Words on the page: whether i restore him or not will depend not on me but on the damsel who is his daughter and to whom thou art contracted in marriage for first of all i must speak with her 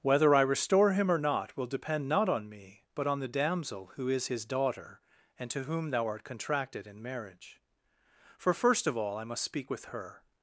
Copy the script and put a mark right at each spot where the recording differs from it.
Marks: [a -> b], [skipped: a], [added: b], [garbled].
whether i restore him or not will depend not on me but on the damsel who is his daughter and to whom thou art contracted in marriage for first of all i must speak with her